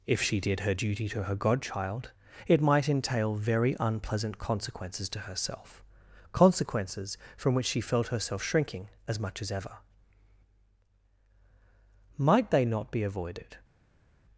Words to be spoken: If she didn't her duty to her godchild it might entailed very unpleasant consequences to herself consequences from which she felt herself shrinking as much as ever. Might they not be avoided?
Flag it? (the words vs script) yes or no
yes